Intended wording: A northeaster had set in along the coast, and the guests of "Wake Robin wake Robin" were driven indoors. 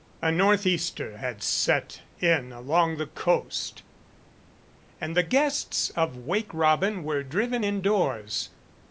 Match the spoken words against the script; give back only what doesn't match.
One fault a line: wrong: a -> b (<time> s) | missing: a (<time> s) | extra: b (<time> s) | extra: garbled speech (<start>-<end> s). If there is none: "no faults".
missing: wake Robin (7.0 s)